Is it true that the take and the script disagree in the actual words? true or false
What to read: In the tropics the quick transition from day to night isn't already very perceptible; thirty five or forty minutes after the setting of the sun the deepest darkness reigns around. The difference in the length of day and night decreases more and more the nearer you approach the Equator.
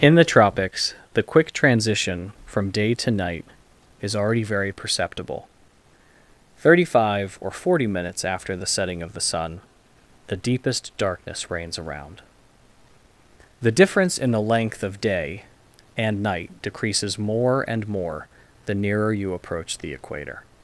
true